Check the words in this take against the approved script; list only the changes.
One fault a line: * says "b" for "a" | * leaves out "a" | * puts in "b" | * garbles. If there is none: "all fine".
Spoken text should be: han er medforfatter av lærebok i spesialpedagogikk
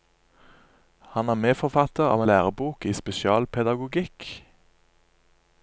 all fine